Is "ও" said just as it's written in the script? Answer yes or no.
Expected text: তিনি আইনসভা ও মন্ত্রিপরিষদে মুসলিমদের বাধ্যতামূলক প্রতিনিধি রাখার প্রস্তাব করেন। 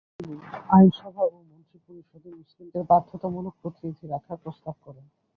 yes